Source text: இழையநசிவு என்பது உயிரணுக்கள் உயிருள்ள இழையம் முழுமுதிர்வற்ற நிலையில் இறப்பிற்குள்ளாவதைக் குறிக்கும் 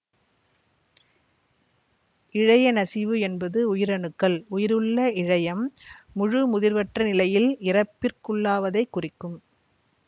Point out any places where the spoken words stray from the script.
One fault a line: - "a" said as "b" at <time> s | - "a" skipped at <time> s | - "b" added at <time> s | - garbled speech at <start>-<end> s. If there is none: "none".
none